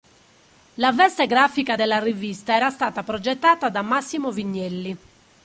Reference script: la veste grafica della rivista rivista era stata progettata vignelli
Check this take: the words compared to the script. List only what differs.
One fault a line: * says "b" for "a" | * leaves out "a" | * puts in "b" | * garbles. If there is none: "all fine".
* leaves out "rivista"
* puts in "da massimo"